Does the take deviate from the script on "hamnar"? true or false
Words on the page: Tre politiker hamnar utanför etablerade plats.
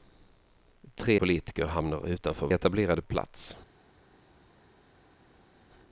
false